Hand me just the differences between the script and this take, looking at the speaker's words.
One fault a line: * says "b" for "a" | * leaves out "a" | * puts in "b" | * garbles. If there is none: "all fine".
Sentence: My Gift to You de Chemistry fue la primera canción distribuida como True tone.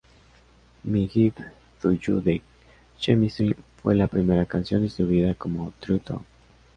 all fine